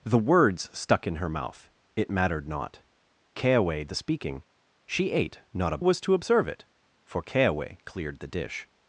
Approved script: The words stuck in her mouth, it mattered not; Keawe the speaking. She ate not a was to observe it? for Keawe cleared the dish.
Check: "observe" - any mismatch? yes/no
no